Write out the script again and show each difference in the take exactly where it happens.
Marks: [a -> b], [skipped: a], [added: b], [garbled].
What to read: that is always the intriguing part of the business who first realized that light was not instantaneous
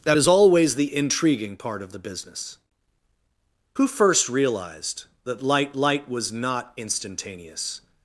that is always the intriguing part of the business who first realized that light [added: light] was not instantaneous